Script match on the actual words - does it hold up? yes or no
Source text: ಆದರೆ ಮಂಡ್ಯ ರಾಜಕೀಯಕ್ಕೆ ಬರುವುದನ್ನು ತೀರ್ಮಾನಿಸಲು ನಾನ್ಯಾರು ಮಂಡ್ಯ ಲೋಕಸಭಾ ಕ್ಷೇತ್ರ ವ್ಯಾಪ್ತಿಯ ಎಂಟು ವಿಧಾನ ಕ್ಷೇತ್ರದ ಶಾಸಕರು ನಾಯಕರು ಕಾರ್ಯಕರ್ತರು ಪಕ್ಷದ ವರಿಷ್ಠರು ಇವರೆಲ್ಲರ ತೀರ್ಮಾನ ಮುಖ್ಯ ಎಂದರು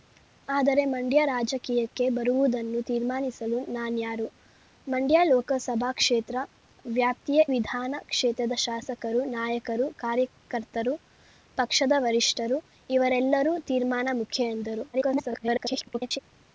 no